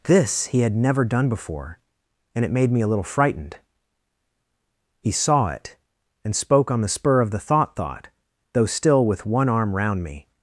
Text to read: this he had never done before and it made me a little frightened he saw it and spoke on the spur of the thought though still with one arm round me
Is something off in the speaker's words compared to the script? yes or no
yes